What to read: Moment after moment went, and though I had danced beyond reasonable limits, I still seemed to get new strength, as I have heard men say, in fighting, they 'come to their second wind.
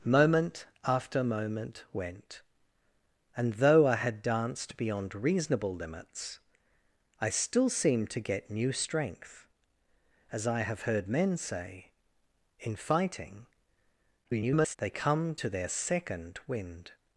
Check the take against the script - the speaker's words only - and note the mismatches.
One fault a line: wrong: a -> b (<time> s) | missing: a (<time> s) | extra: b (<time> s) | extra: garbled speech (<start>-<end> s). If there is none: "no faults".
extra: garbled speech (14.2-14.8 s)